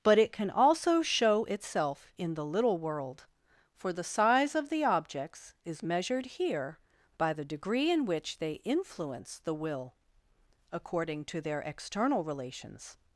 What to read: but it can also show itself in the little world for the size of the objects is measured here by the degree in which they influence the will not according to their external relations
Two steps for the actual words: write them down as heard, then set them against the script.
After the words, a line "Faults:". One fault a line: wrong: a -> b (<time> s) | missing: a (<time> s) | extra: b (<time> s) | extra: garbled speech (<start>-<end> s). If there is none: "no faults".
but it can also show itself in the little world for the size of the objects is measured here by the degree in which they influence the will according to their external relations
Faults:
missing: not (9.9 s)